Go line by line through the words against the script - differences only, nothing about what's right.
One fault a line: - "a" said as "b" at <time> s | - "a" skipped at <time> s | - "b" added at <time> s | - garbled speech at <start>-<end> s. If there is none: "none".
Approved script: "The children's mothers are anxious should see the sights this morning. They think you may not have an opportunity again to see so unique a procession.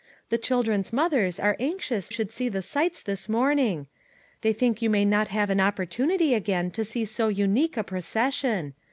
none